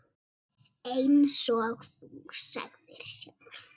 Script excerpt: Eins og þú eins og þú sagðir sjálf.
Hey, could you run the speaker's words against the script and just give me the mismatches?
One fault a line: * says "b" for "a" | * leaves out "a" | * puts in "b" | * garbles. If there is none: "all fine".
* leaves out "eins og þú"